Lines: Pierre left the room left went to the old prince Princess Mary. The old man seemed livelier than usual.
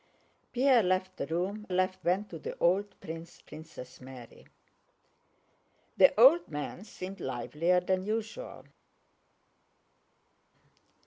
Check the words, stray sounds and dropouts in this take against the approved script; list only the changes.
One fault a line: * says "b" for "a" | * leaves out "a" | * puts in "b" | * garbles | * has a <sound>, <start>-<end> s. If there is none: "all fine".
all fine